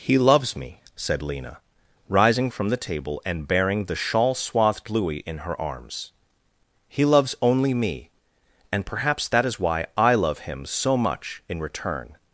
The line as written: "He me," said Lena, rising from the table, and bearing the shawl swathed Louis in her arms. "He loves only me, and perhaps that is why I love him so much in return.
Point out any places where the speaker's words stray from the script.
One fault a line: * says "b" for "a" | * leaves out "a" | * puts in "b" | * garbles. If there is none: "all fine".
* puts in "loves"